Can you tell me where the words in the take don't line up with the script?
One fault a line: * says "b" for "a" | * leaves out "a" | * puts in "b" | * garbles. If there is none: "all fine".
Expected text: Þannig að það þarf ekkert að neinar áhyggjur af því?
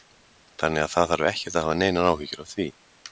* puts in "hafa"